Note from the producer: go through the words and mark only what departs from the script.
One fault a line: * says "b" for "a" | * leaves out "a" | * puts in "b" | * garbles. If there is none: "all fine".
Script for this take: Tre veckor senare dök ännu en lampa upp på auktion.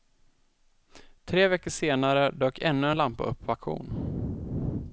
all fine